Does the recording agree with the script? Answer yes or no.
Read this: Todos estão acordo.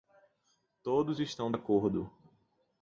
yes